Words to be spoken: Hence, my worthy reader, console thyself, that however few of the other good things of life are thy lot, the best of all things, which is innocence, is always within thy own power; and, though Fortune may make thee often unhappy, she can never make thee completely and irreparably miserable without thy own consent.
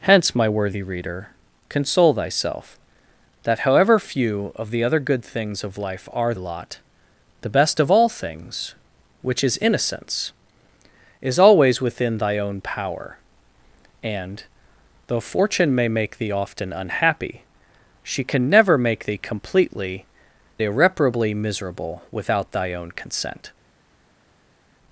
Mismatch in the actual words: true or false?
true